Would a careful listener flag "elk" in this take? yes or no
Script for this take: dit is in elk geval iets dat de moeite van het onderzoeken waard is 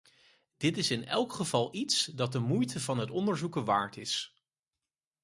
no